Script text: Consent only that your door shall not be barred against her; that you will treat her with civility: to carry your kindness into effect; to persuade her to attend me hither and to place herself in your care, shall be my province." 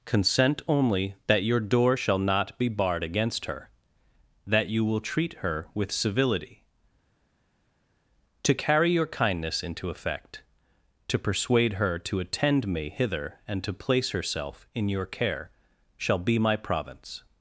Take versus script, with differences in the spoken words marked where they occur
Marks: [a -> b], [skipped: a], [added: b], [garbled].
Consent only that your door shall not be barred against her; that you will treat her with civility: to carry your kindness into effect; to persuade her to attend me hither and to place herself in your care, shall be my province."